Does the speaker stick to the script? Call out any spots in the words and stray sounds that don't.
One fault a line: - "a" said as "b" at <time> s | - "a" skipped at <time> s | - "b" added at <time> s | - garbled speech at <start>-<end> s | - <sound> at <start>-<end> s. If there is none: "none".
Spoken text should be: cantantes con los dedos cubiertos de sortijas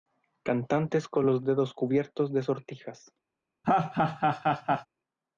- laugh at 3.6-4.9 s